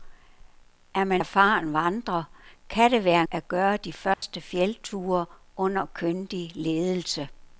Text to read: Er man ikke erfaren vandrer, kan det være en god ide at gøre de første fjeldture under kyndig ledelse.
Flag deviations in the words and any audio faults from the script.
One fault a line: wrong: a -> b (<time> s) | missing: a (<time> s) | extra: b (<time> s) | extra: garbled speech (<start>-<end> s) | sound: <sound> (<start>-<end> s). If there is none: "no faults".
missing: ikke (1.2 s)
missing: en god ide (3.2 s)
sound: dropout (4.1-4.2 s)